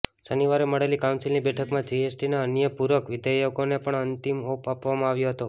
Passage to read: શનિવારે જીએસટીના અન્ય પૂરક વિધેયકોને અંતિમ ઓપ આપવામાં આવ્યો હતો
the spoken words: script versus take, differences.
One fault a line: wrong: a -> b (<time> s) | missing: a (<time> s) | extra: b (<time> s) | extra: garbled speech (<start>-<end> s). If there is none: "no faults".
extra: મળેલી કાઉન્સિલની બેઠકમાં (0.7 s)
extra: પણ (3.8 s)